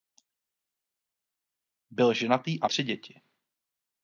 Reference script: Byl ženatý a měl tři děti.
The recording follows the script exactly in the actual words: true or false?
false